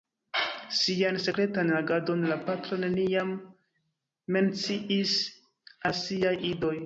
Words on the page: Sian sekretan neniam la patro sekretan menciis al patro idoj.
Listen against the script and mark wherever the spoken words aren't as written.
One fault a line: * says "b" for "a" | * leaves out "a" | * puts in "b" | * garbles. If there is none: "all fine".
* says "agadon" for "neniam"
* says "neniam" for "sekretan"
* says "siaj" for "patro"